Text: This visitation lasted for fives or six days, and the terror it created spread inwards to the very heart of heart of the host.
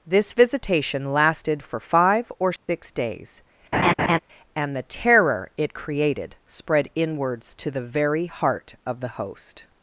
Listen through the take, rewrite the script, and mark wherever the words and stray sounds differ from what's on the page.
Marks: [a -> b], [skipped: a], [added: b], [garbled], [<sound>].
This visitation lasted for [fives -> five] or six [dropout] days, [laugh] and the terror it created spread inwards to the very heart of [skipped: heart of] the host.